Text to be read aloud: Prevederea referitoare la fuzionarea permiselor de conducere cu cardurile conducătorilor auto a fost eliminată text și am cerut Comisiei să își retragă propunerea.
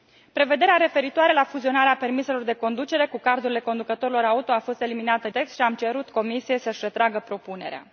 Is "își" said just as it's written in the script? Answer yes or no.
yes